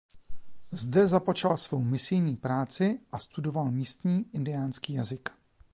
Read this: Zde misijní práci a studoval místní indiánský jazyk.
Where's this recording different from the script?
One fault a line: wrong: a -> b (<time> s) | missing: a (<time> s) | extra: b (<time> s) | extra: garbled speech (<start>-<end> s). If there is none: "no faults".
extra: započal svou (1.1 s)